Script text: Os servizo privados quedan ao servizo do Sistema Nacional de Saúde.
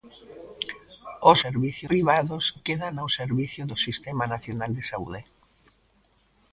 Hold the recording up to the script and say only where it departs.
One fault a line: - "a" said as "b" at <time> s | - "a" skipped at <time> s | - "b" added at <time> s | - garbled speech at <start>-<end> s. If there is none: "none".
none